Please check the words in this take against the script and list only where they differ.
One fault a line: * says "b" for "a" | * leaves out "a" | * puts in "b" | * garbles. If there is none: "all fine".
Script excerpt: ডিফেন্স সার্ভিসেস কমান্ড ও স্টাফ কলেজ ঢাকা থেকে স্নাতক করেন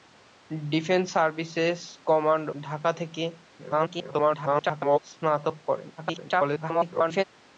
* leaves out "ও স্টাফ কলেজ"
* garbles
* garbles